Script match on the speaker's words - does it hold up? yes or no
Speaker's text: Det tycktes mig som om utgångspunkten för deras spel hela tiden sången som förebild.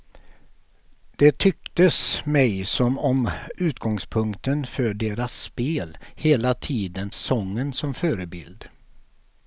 yes